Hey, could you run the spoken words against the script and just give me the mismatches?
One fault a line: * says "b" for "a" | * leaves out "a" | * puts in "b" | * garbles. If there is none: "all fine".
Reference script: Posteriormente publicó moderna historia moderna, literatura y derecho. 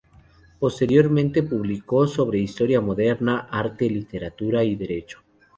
* says "sobre" for "moderna"
* puts in "arte"